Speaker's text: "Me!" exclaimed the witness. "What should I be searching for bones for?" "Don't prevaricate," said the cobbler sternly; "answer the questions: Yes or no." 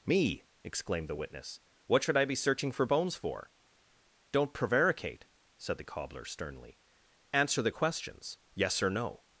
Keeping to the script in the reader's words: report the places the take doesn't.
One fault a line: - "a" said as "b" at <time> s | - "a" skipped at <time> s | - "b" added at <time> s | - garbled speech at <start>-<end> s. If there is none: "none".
none